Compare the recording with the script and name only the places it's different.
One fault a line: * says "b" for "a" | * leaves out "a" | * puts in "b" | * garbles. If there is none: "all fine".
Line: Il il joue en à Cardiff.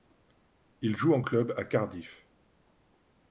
* leaves out "il"
* puts in "club"